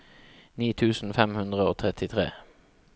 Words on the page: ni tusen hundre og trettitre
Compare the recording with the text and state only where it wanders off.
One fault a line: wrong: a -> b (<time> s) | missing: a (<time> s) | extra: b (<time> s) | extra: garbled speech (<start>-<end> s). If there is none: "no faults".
extra: fem (1.2 s)